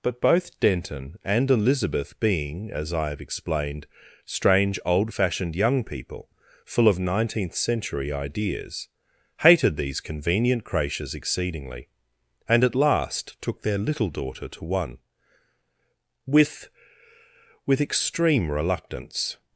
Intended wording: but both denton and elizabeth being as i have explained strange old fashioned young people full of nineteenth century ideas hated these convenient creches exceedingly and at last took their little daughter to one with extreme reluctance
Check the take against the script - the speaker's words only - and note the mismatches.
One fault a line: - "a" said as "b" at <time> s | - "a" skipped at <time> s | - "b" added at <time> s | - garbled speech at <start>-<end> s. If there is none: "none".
- "with" added at 17.6 s